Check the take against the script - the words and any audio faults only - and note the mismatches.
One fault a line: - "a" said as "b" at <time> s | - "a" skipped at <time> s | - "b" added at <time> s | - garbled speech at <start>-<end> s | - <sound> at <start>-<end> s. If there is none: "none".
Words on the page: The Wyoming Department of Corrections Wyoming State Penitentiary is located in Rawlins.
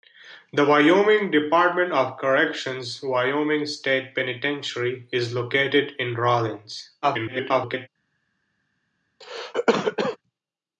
- garbled speech at 7.0-7.9 s
- cough at 9.2-10.2 s